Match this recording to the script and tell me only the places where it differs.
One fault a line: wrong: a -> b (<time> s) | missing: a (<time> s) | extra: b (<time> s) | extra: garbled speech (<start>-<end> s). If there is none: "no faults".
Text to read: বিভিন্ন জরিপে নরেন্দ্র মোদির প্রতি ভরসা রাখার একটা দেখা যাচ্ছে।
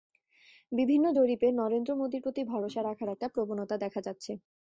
extra: প্রবণতা (3.3 s)